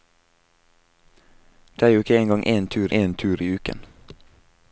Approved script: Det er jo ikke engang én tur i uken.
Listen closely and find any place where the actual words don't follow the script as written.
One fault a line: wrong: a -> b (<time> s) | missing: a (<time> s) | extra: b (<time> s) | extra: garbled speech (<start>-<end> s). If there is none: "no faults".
extra: én tur (2.9 s)